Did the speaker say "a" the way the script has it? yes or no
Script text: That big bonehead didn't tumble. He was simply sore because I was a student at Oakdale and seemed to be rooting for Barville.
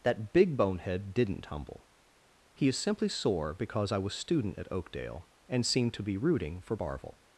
no